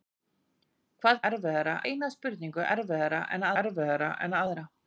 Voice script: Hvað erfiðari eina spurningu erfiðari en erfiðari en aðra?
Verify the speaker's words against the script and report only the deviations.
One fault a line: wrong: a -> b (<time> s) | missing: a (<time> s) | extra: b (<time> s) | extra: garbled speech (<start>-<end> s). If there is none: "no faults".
no faults